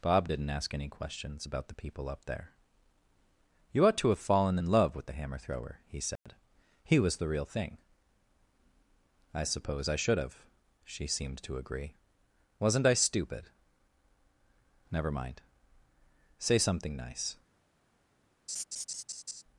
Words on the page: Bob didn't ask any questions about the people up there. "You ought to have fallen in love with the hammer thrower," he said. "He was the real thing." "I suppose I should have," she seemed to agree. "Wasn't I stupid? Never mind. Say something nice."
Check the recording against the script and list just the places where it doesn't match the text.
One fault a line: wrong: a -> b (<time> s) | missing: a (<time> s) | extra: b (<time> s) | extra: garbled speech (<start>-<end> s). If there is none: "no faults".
no faults